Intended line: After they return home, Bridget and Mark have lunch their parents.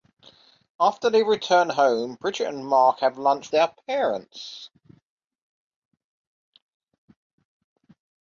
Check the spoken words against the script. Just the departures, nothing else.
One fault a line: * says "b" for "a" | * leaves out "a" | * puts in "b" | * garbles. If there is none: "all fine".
all fine